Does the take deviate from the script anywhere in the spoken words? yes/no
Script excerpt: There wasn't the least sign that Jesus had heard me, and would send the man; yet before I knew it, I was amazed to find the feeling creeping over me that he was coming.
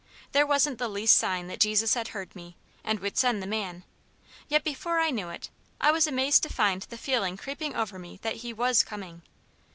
no